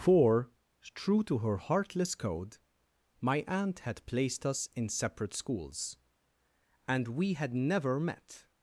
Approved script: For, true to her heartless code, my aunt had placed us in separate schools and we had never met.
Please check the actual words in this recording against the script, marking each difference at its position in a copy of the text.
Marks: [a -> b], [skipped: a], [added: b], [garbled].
For, true to her heartless code, my aunt had placed us in separate schools and we had never met.